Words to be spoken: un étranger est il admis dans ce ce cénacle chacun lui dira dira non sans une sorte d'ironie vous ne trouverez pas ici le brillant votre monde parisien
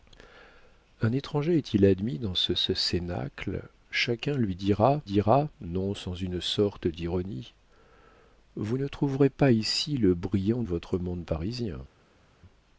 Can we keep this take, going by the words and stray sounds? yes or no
yes